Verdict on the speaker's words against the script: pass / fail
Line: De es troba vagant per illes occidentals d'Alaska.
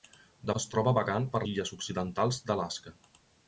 pass